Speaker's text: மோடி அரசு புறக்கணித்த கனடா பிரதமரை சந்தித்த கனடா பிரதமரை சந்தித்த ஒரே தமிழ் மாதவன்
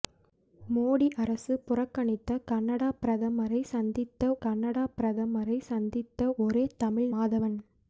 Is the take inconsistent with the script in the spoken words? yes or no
no